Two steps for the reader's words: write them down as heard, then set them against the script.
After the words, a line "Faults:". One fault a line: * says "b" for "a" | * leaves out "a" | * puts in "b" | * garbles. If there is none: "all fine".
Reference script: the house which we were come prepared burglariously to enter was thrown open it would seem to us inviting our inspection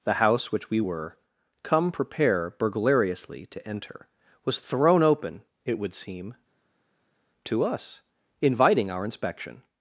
the house which we were come prepare burglariously to enter was thrown open it would seem to us inviting our inspection
Faults:
* says "prepare" for "prepared"